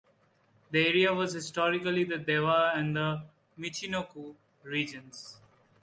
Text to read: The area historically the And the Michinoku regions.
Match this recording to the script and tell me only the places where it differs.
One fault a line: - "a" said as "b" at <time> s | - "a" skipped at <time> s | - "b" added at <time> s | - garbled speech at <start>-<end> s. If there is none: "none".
- "was" added at 1.1 s
- "Dewa" added at 2.2 s